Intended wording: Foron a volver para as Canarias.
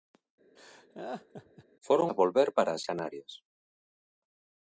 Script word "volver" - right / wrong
right